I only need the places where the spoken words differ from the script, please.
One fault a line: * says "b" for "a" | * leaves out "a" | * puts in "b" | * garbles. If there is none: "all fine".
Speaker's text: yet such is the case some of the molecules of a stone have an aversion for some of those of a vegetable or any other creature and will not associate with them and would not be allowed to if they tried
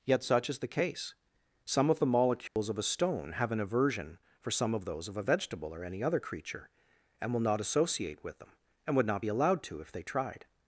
all fine